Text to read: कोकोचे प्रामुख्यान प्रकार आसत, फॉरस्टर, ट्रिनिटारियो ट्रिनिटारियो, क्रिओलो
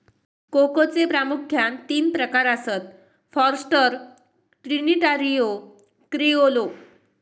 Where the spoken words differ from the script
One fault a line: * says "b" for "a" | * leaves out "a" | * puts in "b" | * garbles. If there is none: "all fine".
* puts in "तीन"
* leaves out "ट्रिनिटारियो"